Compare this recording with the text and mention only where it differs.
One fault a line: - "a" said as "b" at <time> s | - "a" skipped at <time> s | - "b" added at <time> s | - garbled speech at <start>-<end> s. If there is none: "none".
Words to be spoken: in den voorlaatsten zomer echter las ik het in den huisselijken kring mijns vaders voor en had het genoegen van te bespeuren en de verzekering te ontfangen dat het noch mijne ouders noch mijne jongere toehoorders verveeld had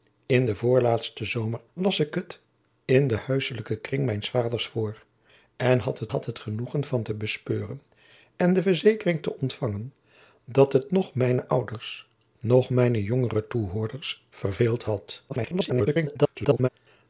- "echter" skipped at 1.6 s
- "had het" added at 6.1 s
- garbled speech at 15.3-16.7 s